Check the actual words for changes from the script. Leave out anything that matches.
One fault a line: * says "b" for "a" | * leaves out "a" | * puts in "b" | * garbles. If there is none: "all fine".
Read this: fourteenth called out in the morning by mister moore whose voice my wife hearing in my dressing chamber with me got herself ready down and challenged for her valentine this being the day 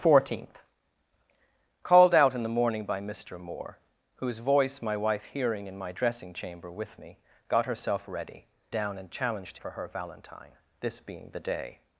all fine